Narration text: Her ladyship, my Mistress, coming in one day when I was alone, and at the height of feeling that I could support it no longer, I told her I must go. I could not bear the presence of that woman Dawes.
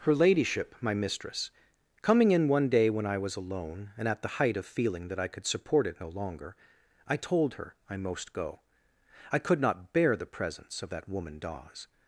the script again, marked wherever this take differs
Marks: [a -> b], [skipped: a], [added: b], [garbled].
Her ladyship, my Mistress, coming in one day when I was alone, and at the height of feeling that I could support it no longer, I told her I [must -> most] go. I could not bear the presence of that woman Dawes.